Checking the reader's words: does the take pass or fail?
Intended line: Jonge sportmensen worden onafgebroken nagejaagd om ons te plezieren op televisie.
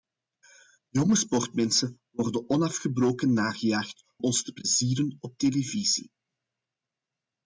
fail